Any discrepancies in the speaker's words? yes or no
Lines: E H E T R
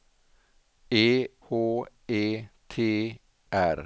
no